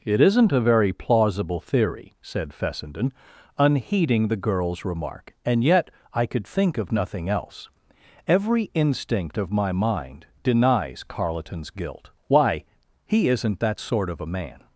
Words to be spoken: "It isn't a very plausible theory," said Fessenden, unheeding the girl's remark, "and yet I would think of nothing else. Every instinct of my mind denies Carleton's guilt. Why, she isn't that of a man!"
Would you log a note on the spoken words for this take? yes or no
yes